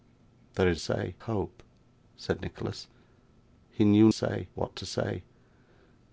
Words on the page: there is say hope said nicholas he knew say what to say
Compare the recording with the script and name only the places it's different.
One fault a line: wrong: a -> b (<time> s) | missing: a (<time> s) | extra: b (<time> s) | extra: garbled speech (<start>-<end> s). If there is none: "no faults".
no faults